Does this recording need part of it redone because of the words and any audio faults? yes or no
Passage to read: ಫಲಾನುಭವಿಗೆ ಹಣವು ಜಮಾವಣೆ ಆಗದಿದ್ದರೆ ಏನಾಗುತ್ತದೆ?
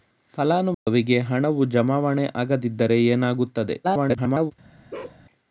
yes